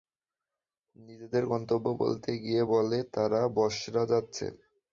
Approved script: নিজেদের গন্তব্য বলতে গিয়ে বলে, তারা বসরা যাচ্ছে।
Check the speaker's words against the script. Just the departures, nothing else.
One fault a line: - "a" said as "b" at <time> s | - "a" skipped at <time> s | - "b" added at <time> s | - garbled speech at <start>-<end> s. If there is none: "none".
none